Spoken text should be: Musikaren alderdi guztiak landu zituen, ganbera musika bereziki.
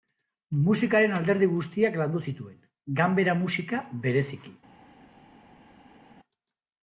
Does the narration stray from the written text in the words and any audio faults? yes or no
no